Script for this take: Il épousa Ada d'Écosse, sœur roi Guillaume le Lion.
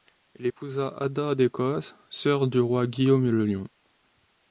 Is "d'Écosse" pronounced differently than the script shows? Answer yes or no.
no